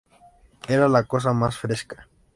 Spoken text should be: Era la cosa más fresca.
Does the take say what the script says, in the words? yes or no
yes